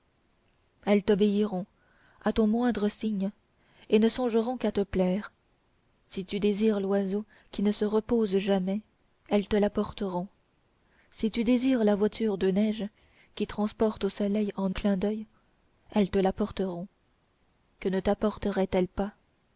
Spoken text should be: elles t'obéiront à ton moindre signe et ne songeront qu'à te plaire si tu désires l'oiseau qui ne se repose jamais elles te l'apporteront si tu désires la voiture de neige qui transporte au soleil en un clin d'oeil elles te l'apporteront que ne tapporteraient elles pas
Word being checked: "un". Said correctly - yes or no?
no